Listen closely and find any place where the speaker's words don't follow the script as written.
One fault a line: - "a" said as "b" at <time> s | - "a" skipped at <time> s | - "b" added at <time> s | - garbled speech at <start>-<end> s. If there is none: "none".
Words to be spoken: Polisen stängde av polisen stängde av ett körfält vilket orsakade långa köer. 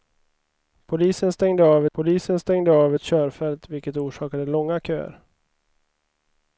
none